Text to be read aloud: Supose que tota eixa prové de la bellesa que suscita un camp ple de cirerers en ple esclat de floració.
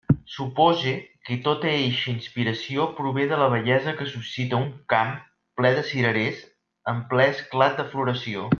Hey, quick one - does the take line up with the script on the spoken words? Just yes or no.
no